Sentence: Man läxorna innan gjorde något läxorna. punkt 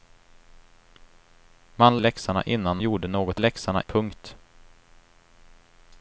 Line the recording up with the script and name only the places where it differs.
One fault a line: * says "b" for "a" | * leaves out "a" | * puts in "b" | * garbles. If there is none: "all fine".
all fine